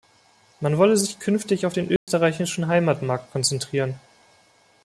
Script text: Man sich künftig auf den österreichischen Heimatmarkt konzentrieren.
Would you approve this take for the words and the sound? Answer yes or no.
no